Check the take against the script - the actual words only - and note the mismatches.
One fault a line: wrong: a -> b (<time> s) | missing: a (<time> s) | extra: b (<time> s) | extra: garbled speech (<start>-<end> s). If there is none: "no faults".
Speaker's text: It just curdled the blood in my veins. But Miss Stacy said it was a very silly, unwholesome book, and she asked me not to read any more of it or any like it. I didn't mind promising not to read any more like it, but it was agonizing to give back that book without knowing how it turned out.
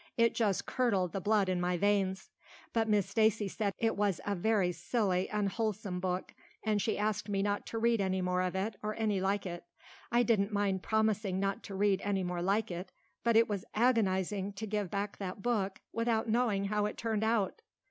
no faults